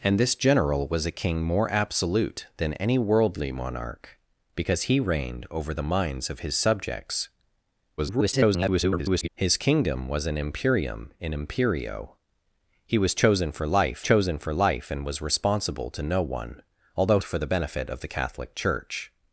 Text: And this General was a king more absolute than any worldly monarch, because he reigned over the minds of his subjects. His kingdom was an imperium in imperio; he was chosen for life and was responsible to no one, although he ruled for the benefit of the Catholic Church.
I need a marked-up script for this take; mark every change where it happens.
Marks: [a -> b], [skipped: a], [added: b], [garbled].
And this General was a king more absolute than any worldly monarch, because he reigned over the minds of his subjects. [garbled] His kingdom was an imperium in imperio; he was chosen for life [added: chosen for life] and was responsible to no one, although [skipped: he ruled] for the benefit of the Catholic Church.